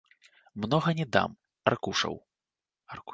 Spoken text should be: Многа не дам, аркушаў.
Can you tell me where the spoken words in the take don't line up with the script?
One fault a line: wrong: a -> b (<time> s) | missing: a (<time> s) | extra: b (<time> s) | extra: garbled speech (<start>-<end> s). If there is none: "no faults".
no faults